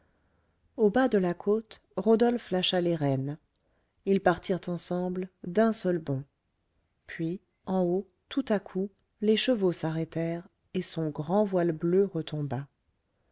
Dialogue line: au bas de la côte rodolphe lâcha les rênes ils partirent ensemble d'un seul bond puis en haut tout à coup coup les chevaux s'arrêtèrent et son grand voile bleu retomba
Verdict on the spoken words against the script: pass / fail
fail